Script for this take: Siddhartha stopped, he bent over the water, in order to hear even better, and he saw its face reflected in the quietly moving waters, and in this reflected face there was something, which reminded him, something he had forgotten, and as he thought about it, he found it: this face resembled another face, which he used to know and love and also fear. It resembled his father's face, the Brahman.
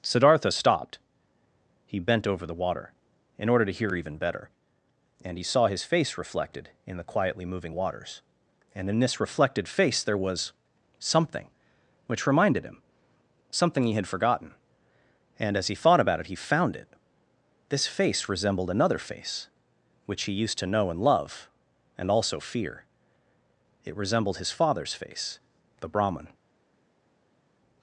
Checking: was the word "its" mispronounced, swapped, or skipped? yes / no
yes